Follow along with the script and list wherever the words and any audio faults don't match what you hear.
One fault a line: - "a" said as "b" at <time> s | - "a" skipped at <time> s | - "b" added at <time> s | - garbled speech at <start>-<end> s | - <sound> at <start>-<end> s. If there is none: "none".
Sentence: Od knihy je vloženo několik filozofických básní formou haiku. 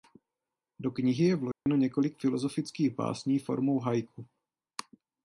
- "Od" said as "Do" at 0.8 s
- dropout at 1.5-1.7 s